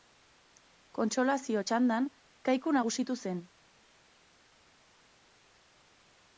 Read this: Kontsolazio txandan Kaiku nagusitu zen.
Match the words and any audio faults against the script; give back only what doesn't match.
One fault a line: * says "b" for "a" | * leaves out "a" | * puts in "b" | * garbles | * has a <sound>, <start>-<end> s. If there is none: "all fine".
all fine